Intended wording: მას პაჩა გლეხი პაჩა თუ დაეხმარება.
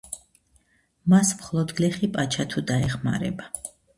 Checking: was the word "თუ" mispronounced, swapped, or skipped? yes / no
no